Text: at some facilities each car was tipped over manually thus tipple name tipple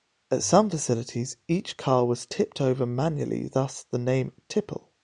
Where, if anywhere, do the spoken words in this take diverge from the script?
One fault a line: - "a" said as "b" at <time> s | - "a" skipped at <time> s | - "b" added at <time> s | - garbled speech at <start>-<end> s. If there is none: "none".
- "tipple" said as "the" at 3.8 s